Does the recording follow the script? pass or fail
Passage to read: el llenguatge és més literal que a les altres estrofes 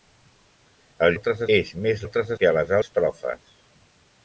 fail